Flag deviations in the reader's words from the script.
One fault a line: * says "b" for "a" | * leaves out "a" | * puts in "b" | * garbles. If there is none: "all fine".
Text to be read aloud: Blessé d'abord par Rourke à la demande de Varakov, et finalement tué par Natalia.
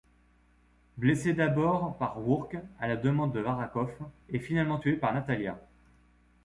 all fine